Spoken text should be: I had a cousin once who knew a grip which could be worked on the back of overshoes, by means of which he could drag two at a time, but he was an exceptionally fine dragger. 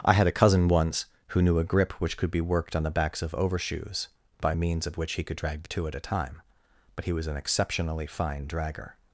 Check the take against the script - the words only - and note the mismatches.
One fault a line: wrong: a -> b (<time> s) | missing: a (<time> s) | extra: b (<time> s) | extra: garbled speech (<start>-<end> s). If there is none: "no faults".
wrong: back -> backs (2.9 s)